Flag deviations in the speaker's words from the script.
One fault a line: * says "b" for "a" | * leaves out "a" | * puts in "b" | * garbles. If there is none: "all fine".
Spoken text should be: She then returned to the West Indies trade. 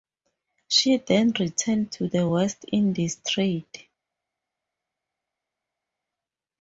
all fine